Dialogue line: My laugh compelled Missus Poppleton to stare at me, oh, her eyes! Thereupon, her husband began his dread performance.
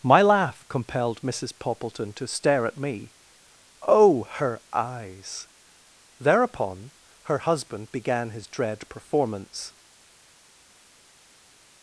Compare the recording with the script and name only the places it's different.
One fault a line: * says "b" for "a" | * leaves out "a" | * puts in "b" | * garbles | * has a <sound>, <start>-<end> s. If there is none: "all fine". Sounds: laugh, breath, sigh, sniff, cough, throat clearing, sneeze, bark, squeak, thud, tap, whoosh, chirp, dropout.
all fine